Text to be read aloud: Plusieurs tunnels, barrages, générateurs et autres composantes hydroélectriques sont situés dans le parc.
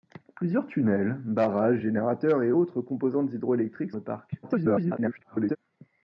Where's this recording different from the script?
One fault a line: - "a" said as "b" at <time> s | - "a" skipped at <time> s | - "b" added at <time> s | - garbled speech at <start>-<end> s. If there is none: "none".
- "sont situés dans" skipped at 3.9 s
- garbled speech at 4.4-5.6 s